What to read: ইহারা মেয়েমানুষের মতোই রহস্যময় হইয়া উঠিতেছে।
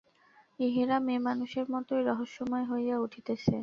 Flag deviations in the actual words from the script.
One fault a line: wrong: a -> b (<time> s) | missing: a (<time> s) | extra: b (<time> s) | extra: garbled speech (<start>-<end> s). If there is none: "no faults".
no faults